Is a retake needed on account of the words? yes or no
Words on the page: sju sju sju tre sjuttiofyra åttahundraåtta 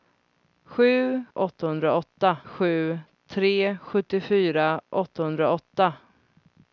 yes